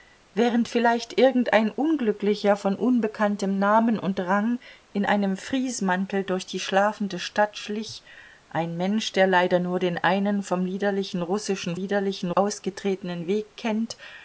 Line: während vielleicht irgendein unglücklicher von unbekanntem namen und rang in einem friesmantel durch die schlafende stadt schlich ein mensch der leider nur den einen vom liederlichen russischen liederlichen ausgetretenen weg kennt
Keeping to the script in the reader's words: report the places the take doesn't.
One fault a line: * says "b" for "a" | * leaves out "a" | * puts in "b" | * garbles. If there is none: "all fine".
all fine